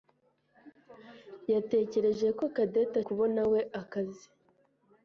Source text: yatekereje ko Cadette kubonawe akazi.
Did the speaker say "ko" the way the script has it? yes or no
yes